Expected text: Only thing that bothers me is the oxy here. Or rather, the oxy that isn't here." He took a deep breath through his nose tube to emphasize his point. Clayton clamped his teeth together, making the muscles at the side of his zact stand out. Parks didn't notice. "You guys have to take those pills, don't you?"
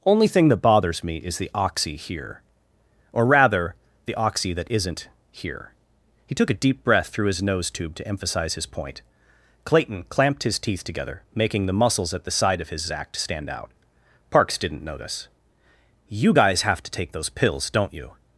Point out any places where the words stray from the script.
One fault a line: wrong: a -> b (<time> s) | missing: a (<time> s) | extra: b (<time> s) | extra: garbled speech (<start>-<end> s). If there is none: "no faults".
no faults